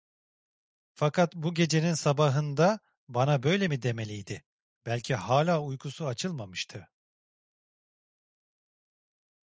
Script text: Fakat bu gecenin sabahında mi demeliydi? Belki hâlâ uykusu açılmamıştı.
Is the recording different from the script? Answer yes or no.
yes